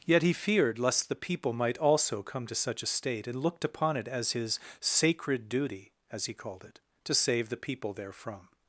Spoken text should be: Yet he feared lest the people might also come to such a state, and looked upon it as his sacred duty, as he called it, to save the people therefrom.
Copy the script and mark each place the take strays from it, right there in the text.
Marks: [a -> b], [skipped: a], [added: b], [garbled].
Yet he feared lest the people might also come to such a state, and looked upon it as his sacred duty, as he called it, to save the people therefrom.